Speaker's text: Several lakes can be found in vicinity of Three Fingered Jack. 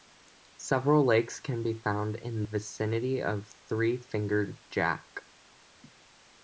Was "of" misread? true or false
false